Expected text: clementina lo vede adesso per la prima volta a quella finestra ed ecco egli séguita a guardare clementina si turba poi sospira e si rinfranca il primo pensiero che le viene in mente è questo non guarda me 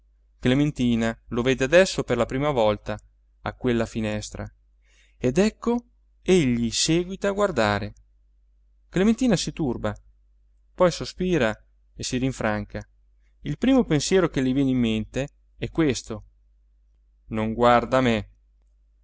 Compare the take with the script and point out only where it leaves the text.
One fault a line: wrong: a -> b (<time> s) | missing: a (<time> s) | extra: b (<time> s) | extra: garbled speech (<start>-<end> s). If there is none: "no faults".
no faults